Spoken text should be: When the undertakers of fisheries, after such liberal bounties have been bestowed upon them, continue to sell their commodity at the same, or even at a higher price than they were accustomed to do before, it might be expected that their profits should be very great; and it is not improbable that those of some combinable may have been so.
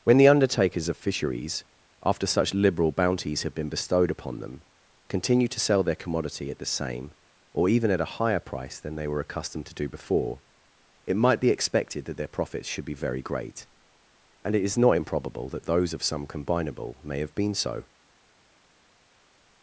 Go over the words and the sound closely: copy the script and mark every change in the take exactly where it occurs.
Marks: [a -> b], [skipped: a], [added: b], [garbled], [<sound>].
When the undertakers of fisheries, after such liberal bounties have been bestowed upon them, continue to sell their commodity at the same, or even at a higher price than they were accustomed to do before, it might be expected that their profits should be very great; and it is not improbable that those of some combinable may have been so.